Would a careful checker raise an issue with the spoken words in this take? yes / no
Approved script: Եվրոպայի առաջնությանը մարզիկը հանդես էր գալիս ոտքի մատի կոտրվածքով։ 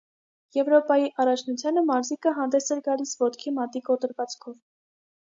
no